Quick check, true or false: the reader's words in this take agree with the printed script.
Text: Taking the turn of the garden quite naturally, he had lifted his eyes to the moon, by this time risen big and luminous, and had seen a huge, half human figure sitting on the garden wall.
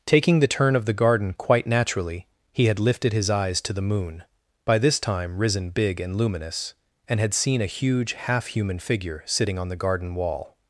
true